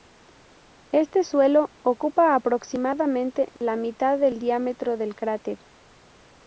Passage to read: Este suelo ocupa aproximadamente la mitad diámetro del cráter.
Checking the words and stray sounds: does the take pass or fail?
fail